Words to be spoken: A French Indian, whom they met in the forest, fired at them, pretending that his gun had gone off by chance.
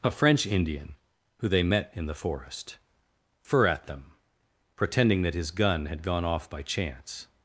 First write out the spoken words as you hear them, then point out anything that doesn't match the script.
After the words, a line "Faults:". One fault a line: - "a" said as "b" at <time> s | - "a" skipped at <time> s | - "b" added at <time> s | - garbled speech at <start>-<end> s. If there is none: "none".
A French Indian, who they met in the forest, fir at them, pretending that his gun had gone off by chance.
Faults:
- "whom" said as "who" at 1.4 s
- "fired" said as "fir" at 3.4 s